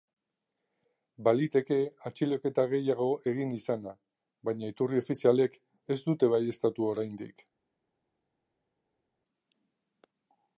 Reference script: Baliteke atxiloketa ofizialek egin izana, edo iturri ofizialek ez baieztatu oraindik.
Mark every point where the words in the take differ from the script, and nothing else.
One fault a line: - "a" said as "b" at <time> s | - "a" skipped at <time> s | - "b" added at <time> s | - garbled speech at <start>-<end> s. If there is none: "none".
- "ofizialek" said as "gehiago" at 2.7 s
- "edo" said as "baina" at 4.5 s
- "dute" added at 6.1 s